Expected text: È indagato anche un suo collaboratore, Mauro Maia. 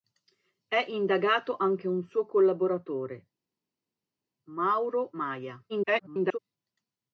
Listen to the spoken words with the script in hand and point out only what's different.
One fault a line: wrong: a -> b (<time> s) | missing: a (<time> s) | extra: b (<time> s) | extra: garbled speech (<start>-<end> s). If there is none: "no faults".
extra: garbled speech (5.7-6.4 s)